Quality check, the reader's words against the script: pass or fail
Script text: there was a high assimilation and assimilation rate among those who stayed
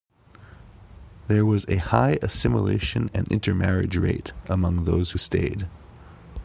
fail